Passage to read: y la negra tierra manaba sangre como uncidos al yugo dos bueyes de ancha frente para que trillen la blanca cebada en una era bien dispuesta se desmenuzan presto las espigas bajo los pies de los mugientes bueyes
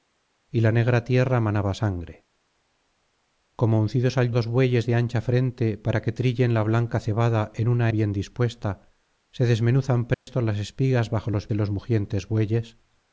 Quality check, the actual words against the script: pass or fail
fail